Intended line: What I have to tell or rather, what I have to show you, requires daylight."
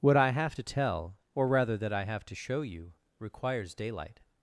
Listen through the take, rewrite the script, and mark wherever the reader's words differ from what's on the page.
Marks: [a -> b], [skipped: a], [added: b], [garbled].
What I have to tell or rather, [what -> that] I have to show you, requires daylight."